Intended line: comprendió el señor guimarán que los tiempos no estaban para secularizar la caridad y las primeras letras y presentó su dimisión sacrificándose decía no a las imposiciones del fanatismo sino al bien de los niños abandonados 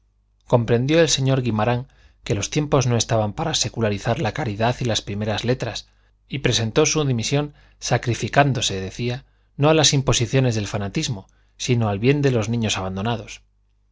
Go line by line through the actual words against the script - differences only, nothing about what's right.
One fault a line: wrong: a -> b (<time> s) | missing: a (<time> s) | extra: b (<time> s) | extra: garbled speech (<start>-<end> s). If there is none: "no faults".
no faults